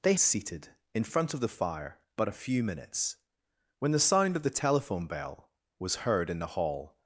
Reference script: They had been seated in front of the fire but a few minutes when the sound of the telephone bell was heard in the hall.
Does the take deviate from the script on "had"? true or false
true